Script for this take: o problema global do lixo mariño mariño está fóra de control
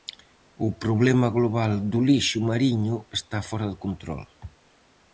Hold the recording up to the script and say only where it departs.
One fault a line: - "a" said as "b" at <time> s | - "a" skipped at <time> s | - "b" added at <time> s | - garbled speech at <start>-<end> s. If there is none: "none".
- "mariño" skipped at 3.0 s